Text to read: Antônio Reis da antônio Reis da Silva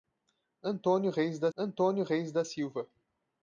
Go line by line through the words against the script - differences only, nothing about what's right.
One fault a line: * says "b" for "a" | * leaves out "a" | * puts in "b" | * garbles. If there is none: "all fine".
all fine